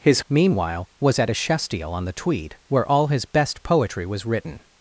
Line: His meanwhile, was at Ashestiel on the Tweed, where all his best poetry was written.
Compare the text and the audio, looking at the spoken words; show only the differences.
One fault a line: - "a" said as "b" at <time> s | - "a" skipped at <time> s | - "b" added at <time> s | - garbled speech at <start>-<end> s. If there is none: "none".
none